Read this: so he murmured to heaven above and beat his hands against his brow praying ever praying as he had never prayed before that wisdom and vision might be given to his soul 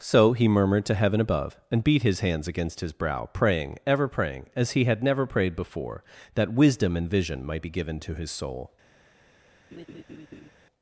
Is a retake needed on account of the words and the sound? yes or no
yes